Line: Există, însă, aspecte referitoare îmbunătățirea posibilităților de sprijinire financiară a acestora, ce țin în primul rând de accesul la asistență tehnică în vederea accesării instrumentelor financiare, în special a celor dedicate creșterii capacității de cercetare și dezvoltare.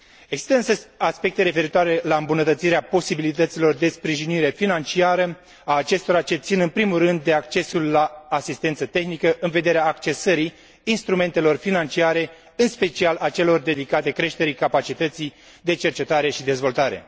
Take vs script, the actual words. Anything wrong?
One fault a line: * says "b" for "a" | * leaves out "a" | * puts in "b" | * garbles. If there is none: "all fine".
* puts in "la"